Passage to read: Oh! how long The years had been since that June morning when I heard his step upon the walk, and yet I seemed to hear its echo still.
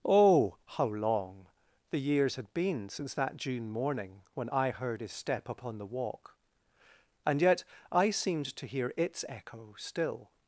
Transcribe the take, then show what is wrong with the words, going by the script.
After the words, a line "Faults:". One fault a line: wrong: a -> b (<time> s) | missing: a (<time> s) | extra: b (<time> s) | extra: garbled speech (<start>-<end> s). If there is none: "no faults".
Oh! how long The years had been since that June morning when I heard his step upon the walk, and yet I seemed to hear its echo still.
Faults:
no faults